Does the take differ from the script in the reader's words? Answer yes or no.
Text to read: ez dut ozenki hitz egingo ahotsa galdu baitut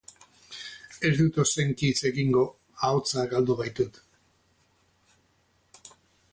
no